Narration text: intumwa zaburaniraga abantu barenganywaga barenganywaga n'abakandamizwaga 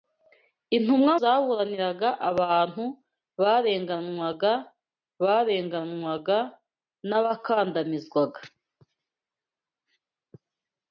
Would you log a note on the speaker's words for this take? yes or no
no